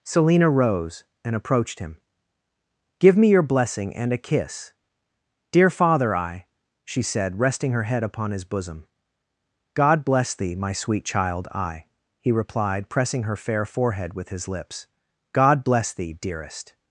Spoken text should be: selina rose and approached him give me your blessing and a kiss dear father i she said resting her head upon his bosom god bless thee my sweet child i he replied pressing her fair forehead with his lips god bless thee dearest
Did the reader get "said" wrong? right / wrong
right